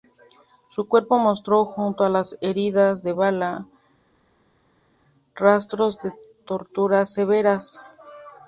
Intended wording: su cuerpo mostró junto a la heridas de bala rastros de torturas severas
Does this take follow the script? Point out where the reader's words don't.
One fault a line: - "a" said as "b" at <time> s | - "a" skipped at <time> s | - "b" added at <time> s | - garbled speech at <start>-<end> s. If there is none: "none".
- "la" said as "las" at 2.1 s